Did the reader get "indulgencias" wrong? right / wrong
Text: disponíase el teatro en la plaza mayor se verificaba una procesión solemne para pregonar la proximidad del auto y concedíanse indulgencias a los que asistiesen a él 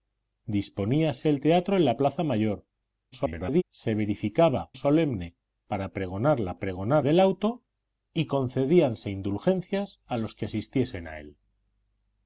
right